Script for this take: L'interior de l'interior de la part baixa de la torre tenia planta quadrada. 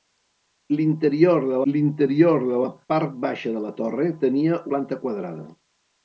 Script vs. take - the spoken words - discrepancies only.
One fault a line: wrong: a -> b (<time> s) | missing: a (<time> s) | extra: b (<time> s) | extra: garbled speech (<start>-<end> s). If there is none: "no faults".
no faults